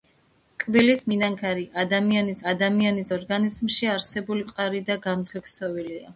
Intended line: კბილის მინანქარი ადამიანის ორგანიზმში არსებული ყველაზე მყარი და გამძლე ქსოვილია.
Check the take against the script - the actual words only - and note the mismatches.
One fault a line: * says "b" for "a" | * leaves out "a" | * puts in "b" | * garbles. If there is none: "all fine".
* puts in "ადამიანის"
* leaves out "ყველაზე"